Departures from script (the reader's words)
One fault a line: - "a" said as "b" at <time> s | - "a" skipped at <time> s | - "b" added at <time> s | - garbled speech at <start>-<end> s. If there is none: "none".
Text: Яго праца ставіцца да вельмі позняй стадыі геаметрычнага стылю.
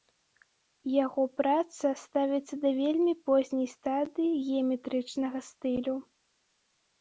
none